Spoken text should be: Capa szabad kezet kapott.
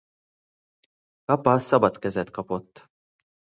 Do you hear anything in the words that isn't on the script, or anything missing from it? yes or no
no